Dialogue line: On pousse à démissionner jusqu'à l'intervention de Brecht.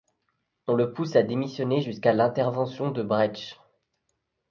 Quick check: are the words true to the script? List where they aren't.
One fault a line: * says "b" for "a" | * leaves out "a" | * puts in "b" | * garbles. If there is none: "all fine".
* puts in "le"